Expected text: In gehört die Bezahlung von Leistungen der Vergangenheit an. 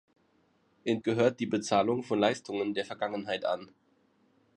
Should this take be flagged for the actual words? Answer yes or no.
no